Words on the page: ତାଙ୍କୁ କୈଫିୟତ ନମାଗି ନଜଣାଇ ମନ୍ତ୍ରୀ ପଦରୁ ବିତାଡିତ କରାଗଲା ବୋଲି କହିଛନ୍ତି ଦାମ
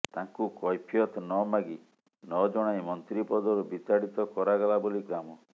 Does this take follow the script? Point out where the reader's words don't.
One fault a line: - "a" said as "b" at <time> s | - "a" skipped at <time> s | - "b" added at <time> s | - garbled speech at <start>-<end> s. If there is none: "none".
- "କହିଛନ୍ତି" skipped at 5.0 s